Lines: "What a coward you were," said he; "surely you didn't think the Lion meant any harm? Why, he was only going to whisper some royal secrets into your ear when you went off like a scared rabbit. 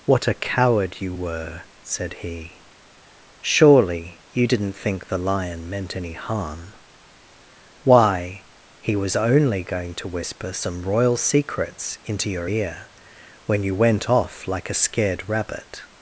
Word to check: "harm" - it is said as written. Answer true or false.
true